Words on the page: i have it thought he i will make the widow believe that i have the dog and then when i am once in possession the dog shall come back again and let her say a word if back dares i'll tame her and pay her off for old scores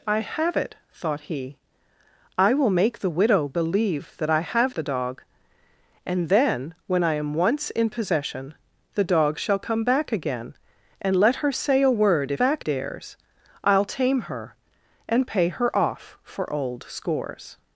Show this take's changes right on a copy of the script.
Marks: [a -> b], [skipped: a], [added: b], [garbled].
i have it thought he i will make the widow believe that i have the dog and then when i am once in possession the dog shall come back again and let her say a word if back dares i'll tame her and pay her off for old scores